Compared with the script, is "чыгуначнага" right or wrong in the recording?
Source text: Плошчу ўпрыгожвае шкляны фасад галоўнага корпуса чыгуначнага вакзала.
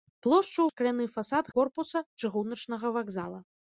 right